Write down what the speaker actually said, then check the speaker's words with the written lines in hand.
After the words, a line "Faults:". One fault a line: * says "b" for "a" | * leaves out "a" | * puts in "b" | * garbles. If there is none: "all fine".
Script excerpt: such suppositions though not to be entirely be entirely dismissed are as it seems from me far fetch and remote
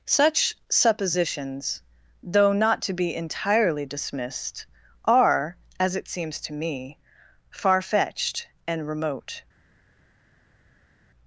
such suppositions though not to be entirely dismissed are as it seems to me far fetched and remote
Faults:
* leaves out "be entirely"
* says "to" for "from"
* says "fetched" for "fetch"